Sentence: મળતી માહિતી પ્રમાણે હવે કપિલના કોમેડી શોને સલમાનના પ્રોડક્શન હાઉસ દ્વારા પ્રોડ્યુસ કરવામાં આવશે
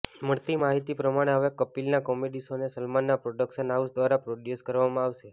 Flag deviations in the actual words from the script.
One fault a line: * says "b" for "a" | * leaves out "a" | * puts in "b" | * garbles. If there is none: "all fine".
all fine